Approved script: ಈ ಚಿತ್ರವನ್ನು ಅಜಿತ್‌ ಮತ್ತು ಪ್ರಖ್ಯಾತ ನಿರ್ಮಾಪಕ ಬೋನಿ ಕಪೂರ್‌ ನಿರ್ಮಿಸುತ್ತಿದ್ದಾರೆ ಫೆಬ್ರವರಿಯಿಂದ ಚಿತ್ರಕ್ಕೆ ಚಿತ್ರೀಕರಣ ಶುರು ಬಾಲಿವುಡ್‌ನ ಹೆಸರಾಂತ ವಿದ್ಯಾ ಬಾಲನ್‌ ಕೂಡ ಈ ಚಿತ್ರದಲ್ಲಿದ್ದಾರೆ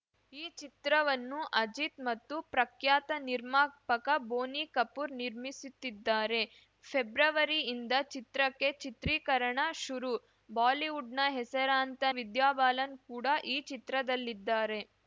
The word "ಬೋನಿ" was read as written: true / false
true